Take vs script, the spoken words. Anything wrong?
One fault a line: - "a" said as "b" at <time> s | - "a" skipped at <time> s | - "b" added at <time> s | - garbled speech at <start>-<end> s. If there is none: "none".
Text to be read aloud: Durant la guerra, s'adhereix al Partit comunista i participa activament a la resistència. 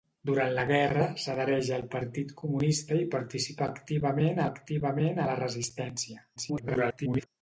- "activament" added at 4.5 s
- garbled speech at 6.4-7.3 s